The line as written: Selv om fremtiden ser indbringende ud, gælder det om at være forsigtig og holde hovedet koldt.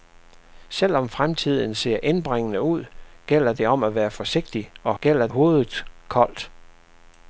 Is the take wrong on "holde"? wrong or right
wrong